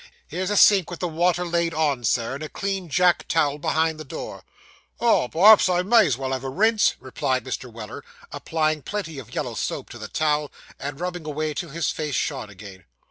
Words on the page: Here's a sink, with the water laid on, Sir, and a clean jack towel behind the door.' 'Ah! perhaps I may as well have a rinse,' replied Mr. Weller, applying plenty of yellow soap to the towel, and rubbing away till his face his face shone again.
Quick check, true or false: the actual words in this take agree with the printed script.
false